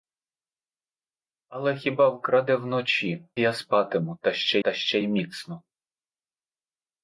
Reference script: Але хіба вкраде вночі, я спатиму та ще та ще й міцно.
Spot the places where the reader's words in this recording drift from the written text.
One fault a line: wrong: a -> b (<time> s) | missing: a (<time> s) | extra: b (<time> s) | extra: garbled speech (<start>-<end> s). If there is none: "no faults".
no faults